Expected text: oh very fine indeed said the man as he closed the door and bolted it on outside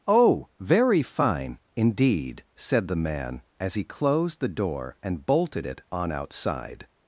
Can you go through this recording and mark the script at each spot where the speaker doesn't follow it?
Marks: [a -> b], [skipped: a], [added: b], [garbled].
oh very fine indeed said the man as he closed the door and bolted it on outside